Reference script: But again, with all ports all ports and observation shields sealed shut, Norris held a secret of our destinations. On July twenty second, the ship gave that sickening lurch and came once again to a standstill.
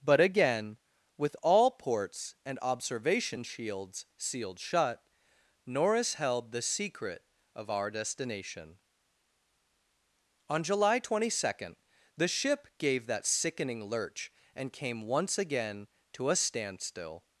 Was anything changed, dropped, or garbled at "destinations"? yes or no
yes